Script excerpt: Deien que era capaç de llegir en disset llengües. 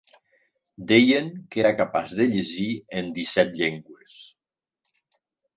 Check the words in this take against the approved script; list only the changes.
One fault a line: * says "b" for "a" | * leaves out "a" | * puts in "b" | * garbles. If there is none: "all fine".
all fine